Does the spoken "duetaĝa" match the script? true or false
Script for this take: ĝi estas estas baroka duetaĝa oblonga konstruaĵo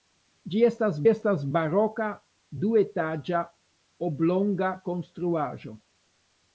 true